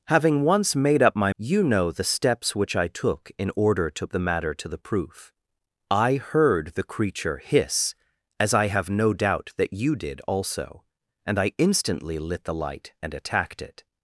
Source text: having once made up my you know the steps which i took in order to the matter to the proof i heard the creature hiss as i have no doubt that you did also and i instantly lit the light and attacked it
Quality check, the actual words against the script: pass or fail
pass